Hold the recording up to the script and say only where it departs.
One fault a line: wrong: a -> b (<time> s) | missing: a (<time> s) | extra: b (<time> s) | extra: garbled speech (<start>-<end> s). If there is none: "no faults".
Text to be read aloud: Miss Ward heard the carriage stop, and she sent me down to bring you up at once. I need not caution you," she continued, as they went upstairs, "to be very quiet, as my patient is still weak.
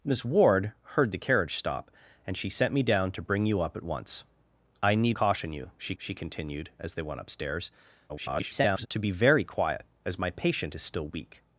missing: not (5.2 s)
extra: she (6.0 s)
extra: garbled speech (8.1-8.9 s)